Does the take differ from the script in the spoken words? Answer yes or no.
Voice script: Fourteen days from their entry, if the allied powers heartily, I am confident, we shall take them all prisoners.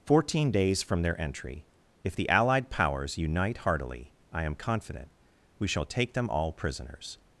yes